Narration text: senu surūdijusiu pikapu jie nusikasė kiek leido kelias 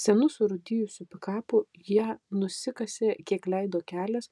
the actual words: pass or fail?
pass